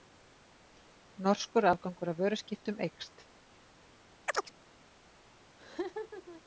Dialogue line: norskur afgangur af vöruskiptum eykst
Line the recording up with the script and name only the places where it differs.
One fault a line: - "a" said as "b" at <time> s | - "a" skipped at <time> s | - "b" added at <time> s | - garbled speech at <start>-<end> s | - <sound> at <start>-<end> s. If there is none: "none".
- chirp at 4.3-4.5 s
- laugh at 5.6-6.4 s